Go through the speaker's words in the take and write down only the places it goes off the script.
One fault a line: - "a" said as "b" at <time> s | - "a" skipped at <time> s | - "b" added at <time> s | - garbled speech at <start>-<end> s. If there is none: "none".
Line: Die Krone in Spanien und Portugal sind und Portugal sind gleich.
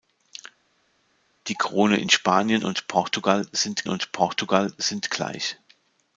none